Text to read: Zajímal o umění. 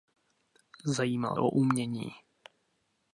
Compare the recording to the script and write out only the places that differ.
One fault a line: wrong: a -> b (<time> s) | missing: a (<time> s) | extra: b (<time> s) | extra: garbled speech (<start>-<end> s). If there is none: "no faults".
no faults